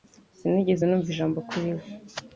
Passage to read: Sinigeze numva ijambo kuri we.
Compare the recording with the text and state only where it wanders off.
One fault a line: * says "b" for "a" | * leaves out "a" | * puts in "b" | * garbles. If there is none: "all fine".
all fine